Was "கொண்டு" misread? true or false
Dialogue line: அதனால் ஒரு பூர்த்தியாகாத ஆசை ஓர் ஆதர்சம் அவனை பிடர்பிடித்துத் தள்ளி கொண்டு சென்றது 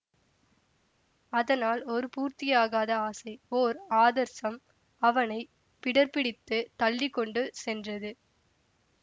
false